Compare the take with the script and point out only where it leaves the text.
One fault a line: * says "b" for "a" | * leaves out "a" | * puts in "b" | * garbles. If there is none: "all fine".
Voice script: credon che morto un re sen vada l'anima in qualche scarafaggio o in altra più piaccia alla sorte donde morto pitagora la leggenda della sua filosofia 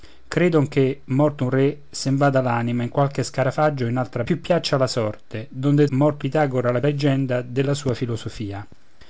all fine